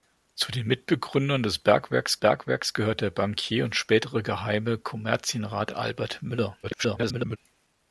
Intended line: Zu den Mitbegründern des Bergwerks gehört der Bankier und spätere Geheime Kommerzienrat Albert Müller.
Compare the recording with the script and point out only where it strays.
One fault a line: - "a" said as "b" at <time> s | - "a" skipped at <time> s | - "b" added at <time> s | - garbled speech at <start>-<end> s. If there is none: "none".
- "Bergwerks" added at 2.2 s
- garbled speech at 6.6-7.4 s